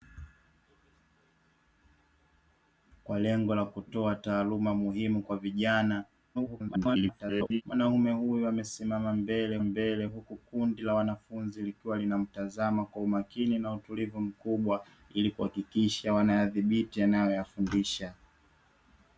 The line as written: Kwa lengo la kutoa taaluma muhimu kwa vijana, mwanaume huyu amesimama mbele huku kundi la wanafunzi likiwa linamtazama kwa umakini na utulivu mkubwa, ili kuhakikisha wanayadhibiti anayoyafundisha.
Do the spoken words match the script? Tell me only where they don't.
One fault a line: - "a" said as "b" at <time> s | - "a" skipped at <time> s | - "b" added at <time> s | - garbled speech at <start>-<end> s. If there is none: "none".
- garbled speech at 6.3-7.6 s
- "mbele" added at 9.6 s